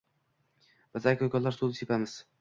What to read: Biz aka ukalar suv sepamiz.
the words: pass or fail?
pass